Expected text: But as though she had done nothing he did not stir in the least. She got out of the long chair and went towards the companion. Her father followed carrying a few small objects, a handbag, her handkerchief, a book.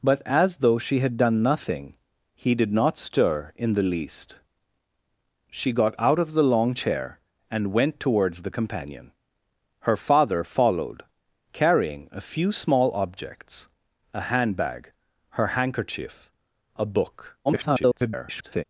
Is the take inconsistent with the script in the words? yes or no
yes